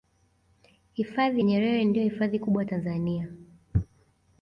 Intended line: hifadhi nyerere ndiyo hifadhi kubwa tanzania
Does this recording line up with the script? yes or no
yes